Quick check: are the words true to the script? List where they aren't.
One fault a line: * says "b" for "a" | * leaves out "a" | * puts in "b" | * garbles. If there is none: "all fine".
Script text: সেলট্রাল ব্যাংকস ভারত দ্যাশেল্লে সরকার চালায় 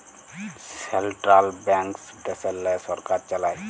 * leaves out "ভারত"